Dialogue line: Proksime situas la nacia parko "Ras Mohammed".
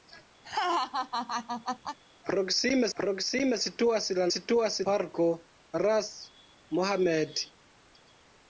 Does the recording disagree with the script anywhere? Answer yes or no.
yes